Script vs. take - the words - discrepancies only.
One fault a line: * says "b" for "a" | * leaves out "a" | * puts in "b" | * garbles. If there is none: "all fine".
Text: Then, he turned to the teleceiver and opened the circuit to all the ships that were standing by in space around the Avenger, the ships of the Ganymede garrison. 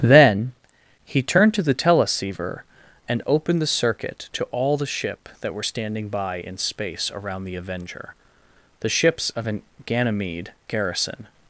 * says "ship" for "ships"
* says "an" for "the"